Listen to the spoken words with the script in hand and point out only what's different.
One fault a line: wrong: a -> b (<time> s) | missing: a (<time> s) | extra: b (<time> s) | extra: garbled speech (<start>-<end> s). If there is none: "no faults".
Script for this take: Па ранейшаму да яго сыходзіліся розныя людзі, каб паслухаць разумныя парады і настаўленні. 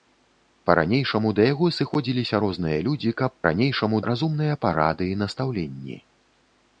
wrong: паслухаць -> ранейшаму (3.5 s)